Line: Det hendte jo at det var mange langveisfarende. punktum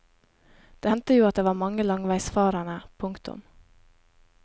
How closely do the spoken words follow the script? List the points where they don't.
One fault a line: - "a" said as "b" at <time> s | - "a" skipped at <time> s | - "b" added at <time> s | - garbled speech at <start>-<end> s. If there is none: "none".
none